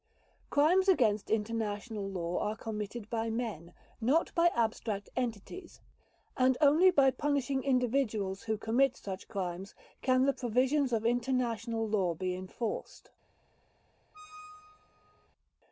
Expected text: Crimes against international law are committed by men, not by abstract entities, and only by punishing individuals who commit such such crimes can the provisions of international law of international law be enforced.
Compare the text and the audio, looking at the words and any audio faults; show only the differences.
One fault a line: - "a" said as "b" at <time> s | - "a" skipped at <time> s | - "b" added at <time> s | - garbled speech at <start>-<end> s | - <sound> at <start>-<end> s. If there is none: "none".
- "such" skipped at 9.3 s
- "of international law" skipped at 12.1 s
- squeak at 14.1-15.3 s